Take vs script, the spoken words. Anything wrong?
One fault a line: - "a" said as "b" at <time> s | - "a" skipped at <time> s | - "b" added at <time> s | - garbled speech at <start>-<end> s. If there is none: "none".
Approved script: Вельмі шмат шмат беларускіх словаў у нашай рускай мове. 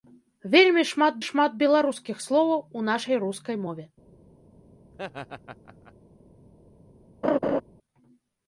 none